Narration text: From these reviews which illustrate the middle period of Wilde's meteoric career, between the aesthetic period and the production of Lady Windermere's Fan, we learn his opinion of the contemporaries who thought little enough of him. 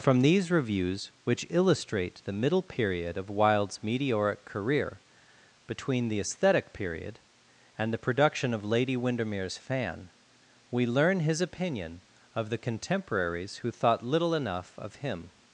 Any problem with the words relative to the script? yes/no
no